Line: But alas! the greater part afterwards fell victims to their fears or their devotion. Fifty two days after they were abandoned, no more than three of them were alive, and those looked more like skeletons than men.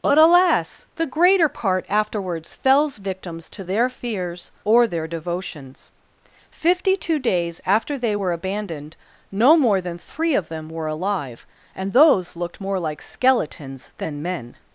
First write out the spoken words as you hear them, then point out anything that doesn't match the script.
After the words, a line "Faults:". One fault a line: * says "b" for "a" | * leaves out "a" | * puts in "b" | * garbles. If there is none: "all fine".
But alas! the greater part afterwards fells victims to their fears or their devotions. Fifty two days after they were abandoned, no more than three of them were alive, and those looked more like skeletons than men.
Faults:
* says "fells" for "fell"
* says "devotions" for "devotion"